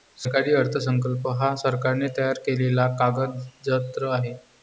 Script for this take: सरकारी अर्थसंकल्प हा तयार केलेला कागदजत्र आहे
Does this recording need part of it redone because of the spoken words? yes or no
yes